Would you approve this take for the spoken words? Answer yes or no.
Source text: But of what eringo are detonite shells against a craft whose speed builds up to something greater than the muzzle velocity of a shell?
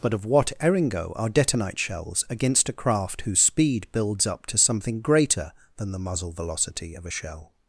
yes